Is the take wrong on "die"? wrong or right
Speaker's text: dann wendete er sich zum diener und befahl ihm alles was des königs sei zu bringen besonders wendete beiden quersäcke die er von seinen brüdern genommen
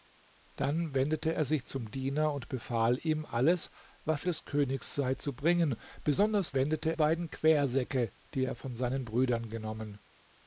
right